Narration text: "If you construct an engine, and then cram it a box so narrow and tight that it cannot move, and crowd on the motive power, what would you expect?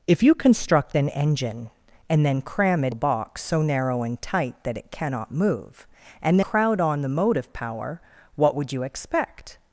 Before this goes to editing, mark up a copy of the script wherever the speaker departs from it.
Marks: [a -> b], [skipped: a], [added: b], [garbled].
"If you construct an engine, and then cram it a box so narrow and tight that it cannot move, and crowd on the motive power, what would you expect?